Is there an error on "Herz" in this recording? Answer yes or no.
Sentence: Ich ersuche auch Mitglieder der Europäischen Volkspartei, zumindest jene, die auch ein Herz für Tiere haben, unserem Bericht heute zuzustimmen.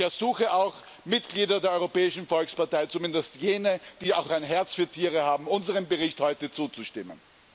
no